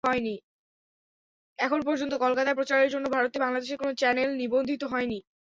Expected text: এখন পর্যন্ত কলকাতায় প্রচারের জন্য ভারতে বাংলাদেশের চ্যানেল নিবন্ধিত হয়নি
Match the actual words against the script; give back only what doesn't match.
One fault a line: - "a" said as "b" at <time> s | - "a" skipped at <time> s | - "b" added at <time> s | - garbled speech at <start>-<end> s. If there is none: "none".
- "কোনো" added at 3.8 s